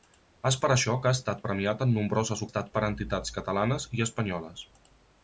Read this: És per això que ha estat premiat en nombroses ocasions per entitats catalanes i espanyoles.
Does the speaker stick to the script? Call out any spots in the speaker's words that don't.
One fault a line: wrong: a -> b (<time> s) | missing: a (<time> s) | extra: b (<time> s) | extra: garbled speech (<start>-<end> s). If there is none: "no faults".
wrong: ocasions -> estat (2.5 s)